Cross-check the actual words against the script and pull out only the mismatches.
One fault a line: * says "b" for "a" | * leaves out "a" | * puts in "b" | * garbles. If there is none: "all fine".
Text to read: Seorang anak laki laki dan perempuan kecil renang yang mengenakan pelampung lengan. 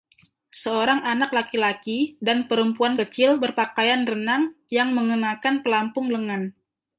* puts in "berpakaian"